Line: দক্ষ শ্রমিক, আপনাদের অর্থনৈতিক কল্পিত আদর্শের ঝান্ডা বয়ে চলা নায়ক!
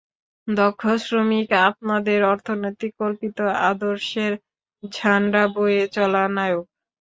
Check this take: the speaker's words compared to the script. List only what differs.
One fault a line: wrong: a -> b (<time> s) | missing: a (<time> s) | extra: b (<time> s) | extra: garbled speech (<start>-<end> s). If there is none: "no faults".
no faults